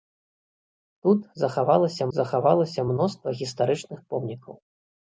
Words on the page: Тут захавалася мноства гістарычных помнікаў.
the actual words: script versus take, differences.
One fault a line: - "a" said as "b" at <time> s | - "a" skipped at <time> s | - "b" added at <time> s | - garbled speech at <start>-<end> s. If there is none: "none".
- "захавалася" added at 2.2 s